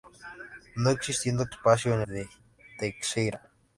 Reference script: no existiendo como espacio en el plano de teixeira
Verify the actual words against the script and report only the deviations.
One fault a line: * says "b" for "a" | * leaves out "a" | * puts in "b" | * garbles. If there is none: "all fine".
* leaves out "como"
* leaves out "el plano"